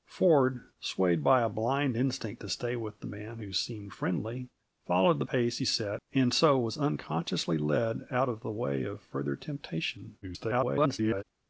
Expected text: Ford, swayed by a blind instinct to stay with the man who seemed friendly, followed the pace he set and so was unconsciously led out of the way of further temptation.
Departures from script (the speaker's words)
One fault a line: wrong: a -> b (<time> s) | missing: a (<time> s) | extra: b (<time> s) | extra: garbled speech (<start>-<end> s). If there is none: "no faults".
extra: garbled speech (10.2-11.2 s)